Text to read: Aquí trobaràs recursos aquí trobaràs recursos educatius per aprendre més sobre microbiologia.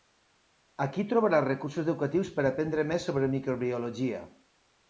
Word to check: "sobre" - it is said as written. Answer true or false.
true